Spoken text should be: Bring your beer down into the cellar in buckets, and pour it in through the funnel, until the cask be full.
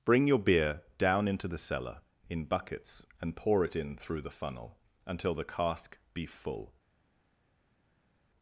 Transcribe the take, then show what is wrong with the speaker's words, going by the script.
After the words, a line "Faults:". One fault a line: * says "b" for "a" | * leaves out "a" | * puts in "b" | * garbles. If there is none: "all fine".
Bring your beer down into the cellar in buckets, and pour it in through the funnel, until the cask be full.
Faults:
all fine